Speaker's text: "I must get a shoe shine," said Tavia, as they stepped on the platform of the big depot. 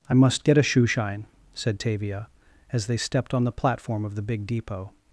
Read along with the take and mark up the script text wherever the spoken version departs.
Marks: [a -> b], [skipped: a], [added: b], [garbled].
"I must get a shoe shine," said Tavia, as they stepped on the platform of the big depot.